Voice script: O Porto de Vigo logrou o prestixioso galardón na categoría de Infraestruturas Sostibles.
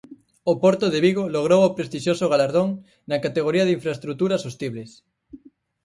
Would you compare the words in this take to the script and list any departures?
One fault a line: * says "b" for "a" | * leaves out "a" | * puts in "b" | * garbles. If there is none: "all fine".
all fine